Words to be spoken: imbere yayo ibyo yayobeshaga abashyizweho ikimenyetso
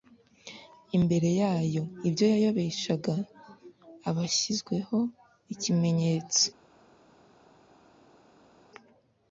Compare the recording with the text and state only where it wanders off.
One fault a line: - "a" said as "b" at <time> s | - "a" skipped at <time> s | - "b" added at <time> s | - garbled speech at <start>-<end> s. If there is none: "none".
none